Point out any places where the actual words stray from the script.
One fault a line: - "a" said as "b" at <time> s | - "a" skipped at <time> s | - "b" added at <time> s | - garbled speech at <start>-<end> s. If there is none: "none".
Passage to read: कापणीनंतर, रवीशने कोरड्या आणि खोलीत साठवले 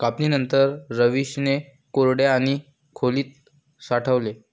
none